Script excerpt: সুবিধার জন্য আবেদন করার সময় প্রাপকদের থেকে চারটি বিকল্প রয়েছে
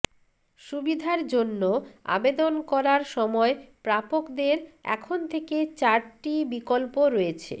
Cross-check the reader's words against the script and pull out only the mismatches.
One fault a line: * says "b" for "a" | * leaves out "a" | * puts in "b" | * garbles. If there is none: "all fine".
* puts in "এখন"